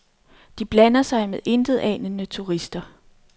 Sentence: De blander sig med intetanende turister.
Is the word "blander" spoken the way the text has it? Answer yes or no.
yes